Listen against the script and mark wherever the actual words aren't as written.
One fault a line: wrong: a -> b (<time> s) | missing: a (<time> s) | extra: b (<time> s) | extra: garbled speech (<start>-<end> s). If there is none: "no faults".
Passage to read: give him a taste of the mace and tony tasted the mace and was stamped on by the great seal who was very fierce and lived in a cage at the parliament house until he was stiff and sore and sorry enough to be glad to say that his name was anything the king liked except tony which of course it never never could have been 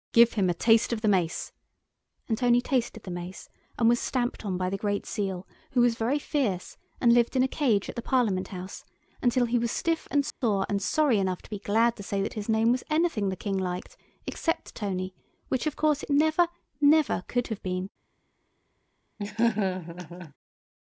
no faults